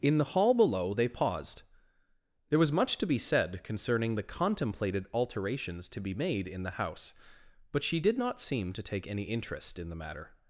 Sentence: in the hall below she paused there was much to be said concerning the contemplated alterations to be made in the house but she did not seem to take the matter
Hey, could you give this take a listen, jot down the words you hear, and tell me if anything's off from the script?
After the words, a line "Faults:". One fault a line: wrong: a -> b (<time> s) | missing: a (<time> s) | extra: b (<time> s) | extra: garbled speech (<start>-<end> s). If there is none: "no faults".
in the hall below they paused there was much to be said concerning the contemplated alterations to be made in the house but she did not seem to take any interest in the matter
Faults:
wrong: she -> they (0.9 s)
extra: any interest in (9.1 s)